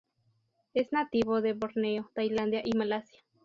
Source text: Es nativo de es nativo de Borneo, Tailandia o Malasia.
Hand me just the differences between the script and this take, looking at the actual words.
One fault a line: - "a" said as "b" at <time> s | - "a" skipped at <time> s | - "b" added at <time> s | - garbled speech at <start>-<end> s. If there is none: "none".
- "es nativo de" skipped at 1.5 s
- "o" said as "y" at 2.6 s